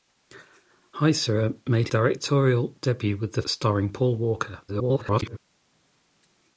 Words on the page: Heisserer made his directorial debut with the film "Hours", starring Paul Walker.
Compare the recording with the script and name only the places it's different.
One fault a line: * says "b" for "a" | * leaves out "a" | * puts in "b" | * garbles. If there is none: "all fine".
* leaves out "his"
* leaves out "film Hours"
* garbles